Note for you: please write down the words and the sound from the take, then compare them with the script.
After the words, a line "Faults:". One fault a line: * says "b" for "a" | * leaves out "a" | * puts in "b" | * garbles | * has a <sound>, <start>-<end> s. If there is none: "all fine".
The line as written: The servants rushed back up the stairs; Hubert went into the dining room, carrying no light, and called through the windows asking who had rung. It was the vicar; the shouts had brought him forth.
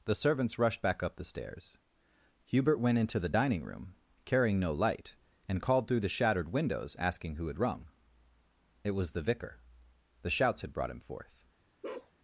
The servants rushed back up the stairs; Hubert went into the dining room, carrying no light, and called through the shattered windows asking who had rung. It was the vicar; the shouts had brought him forth.
Faults:
* puts in "shattered"
* has a bark, 11.8-12.1 s